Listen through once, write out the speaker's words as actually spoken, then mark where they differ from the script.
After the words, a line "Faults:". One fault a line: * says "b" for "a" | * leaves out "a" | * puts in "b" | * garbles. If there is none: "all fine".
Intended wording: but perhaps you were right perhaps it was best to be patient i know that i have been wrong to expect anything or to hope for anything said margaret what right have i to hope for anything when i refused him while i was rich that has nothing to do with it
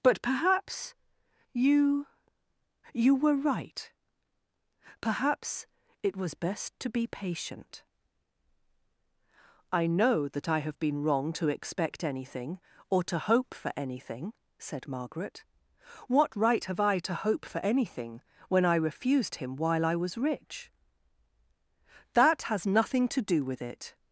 but perhaps you you were right perhaps it was best to be patient i know that i have been wrong to expect anything or to hope for anything said margaret what right have i to hope for anything when i refused him while i was rich that has nothing to do with it
Faults:
* puts in "you"